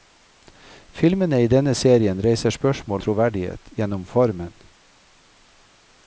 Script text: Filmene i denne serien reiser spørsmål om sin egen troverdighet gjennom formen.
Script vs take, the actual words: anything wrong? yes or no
yes